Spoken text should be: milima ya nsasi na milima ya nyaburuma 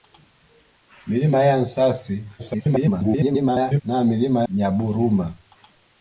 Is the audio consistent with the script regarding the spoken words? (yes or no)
no